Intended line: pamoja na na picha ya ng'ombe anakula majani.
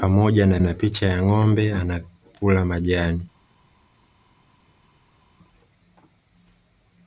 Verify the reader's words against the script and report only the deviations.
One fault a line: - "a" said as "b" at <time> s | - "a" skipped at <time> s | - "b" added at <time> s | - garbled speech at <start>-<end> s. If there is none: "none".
none